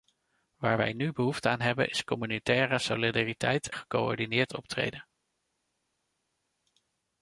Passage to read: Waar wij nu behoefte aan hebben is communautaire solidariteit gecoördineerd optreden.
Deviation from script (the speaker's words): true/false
false